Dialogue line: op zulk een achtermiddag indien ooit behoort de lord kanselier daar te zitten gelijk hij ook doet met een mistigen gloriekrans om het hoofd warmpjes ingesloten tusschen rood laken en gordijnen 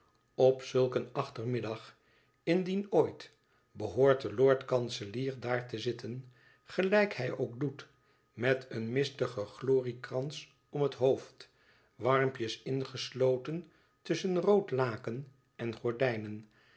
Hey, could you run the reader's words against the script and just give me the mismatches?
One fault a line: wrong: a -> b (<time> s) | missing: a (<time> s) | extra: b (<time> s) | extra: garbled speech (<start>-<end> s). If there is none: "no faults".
no faults